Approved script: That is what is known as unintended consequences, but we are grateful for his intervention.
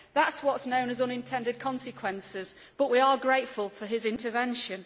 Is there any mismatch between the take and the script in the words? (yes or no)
no